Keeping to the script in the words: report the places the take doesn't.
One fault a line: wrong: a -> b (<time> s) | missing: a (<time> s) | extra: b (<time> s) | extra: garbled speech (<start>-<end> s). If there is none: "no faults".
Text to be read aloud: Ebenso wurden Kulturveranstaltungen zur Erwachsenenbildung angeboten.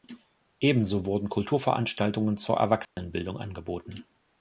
no faults